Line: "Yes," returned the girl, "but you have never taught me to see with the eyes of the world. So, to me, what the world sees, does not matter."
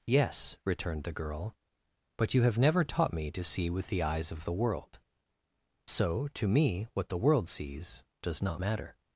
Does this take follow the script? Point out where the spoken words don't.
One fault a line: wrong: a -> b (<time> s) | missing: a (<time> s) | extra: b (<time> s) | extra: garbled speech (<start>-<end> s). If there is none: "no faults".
no faults